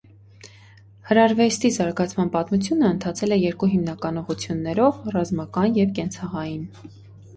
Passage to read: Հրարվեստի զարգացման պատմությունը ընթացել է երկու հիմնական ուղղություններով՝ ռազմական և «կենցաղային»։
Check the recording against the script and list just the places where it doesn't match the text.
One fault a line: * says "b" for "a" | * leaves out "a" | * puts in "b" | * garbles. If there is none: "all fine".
all fine